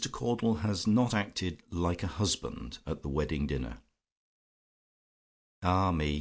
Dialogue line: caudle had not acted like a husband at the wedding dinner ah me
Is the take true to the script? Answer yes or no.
no